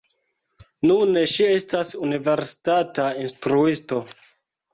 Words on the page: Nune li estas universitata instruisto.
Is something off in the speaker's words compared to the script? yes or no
yes